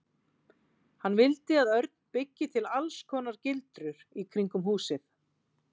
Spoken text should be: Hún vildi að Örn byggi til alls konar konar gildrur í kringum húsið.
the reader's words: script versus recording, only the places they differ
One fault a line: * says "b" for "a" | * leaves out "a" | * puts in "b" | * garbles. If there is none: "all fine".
* says "Hann" for "Hún"
* leaves out "konar"